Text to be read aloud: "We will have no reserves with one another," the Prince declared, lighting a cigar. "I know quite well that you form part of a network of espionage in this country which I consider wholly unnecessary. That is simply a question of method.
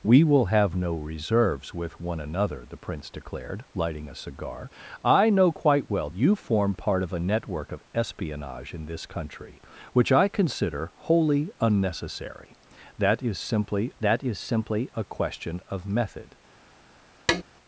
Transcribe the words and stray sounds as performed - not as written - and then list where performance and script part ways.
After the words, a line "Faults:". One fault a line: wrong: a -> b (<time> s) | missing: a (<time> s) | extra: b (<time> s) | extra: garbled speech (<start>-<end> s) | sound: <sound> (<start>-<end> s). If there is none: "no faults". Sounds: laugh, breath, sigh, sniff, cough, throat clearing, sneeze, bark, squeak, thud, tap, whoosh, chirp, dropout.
"We will have no reserves with one another," the Prince declared, lighting a cigar. "I know quite well you form part of a network of espionage in this country which I consider wholly unnecessary. That is simply that is simply a question of method.
Faults:
missing: that (6.1 s)
extra: that is simply (14.0 s)
sound: tap (17.3-17.4 s)